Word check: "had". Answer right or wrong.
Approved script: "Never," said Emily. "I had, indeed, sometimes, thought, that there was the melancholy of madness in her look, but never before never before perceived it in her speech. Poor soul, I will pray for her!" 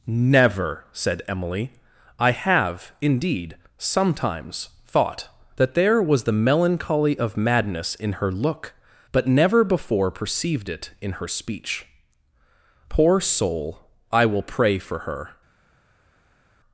wrong